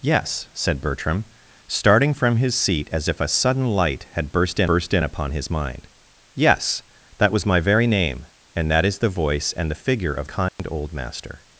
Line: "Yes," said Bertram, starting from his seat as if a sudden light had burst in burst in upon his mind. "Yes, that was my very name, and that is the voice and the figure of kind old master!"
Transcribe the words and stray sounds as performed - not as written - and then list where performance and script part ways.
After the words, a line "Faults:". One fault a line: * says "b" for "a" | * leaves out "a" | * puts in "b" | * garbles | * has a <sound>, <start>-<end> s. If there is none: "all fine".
"Yes," said Bertram, starting from his seat as if a sudden light had burst in burst in upon his mind. "Yes, that was my very name, and that is the voice and the figure of kind old master!"
Faults:
* has a dropout, 10.5-10.6 s